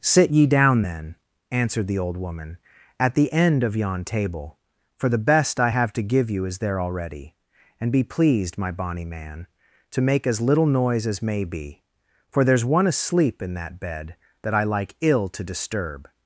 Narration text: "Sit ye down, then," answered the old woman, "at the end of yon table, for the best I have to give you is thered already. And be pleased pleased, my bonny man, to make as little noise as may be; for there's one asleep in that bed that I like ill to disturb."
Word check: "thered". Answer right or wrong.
wrong